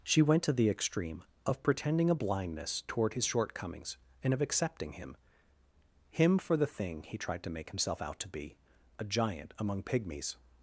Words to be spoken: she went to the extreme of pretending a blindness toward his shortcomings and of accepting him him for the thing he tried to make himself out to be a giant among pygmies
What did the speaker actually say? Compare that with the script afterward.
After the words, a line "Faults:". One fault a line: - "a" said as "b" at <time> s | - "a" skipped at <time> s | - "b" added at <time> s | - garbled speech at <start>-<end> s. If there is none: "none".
she went to the extreme of pretending a blindness toward his shortcomings and of accepting him him for the thing he tried to make himself out to be a giant among pygmies
Faults:
none